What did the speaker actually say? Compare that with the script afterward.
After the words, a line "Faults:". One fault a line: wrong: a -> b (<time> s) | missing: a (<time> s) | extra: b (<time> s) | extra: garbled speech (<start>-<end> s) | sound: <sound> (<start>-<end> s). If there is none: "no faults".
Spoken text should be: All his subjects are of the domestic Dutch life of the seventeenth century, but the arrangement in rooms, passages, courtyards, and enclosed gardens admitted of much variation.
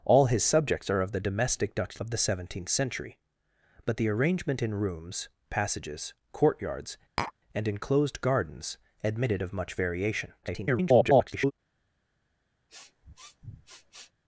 All his subjects are of the domestic Dutch of the seventeenth century, but the arrangement in rooms, passages, courtyards, and enclosed gardens admitted of much variation. [garbled]
Faults:
missing: life (2.0 s)
sound: tap (7.2-7.3 s)
extra: garbled speech (10.4-11.5 s)
sound: sniff (12.7-14.1 s)